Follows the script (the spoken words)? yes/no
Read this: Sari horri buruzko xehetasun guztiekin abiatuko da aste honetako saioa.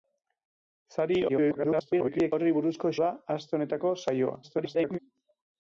no